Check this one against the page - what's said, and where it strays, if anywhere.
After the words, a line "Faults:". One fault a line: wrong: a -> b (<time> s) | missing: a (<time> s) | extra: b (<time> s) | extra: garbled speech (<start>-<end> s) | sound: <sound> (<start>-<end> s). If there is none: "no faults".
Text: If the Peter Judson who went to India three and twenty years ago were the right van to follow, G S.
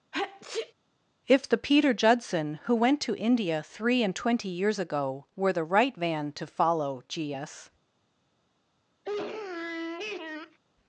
If the Peter Judson who went to India three and twenty years ago were the right van to follow, G S.
Faults:
sound: sneeze (0.1-0.7 s)
sound: sniff (9.0-10.6 s)